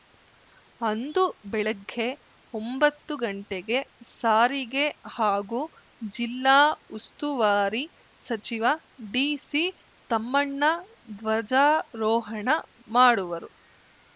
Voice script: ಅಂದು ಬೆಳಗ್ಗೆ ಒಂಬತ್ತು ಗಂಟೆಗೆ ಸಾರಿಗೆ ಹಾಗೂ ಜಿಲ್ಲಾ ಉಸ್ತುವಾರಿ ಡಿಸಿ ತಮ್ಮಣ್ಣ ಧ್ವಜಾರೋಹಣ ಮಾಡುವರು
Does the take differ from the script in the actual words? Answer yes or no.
yes